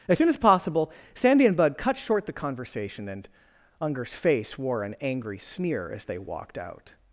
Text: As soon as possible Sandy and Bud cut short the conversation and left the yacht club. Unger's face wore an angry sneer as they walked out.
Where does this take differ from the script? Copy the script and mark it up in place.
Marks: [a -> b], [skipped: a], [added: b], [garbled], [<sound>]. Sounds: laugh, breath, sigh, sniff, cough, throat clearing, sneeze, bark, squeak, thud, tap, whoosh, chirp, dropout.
As soon as possible Sandy and Bud cut short the conversation and [skipped: left the yacht club.] Unger's face wore an angry sneer as they walked out.